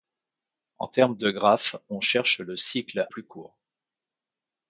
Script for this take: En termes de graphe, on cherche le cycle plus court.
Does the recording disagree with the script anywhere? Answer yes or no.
no